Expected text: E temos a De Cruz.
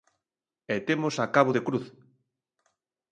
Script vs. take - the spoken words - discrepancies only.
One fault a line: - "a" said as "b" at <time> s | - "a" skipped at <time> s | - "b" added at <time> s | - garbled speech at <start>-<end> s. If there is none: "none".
- "Cabo" added at 1.4 s